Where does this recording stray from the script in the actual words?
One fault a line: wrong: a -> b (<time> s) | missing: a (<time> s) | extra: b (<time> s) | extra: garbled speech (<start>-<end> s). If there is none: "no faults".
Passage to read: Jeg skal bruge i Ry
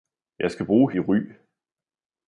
no faults